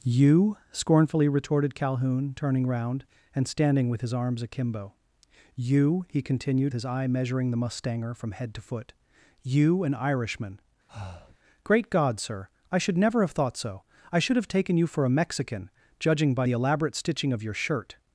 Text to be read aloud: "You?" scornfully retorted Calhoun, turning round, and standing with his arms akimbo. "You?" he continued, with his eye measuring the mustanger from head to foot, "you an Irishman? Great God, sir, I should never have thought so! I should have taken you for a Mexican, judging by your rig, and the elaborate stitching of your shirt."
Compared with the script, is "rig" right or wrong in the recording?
wrong